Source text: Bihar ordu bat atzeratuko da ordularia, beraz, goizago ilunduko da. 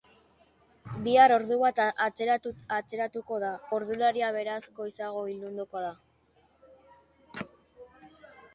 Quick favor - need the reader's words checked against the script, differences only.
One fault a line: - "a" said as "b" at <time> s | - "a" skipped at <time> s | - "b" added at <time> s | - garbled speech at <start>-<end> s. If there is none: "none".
none